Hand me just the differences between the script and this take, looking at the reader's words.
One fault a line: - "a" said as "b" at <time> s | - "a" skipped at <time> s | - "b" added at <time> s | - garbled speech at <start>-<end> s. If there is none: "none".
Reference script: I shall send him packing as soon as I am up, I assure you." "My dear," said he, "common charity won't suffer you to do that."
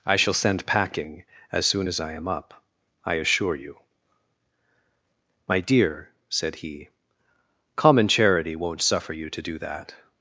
- "him" skipped at 0.7 s